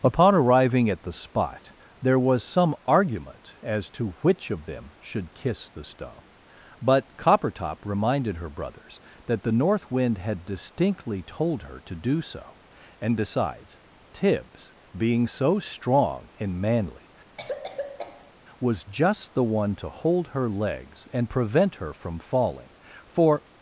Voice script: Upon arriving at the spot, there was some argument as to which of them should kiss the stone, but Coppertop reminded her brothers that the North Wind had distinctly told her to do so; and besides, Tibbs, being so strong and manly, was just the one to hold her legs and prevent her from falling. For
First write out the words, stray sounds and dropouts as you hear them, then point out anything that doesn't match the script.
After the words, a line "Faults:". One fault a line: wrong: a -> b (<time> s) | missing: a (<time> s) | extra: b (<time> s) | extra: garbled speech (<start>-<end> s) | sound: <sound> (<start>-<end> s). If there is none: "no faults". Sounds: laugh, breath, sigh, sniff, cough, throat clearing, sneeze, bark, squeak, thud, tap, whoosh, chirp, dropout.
Upon arriving at the spot, there was some argument as to which of them should kiss the stone, but Coppertop reminded her brothers that the North Wind had distinctly told her to do so; and besides, Tibbs, being so strong and manly, was just the one to hold her legs and prevent her from falling. For
Faults:
sound: cough (17.4-18.3 s)